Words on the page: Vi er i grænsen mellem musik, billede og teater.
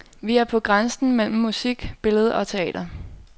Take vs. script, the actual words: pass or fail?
fail